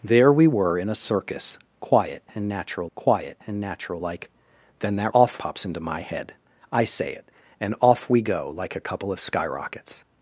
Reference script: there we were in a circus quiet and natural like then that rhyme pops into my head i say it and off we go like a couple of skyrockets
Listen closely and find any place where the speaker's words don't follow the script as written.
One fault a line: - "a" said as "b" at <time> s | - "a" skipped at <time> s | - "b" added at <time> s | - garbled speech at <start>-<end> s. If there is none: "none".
- "quiet and natural" added at 2.9 s
- "rhyme" said as "off" at 5.1 s